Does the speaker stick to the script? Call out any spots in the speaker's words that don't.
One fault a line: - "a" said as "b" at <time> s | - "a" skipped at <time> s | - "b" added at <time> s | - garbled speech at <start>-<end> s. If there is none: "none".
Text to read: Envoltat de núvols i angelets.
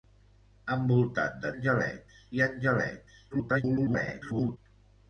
- "núvols" said as "angelets" at 1.5 s
- garbled speech at 3.3-4.6 s